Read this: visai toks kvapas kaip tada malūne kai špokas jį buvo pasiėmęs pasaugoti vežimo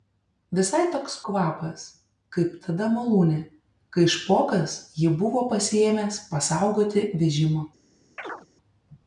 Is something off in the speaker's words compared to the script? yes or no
no